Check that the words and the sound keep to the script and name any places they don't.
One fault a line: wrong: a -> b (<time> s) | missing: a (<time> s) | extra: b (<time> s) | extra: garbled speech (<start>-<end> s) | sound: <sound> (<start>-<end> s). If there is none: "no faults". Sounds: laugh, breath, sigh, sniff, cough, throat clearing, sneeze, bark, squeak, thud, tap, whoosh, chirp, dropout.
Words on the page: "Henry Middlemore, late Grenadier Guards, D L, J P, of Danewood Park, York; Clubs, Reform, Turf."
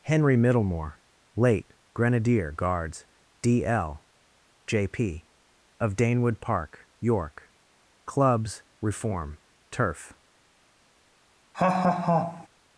sound: laugh (11.5-12.5 s)